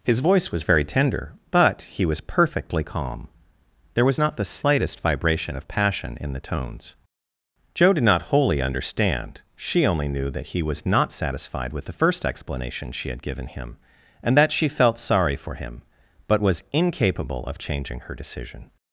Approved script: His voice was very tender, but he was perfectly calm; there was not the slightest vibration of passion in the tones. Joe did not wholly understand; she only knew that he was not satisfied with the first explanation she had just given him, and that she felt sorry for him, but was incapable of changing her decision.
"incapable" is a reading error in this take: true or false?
false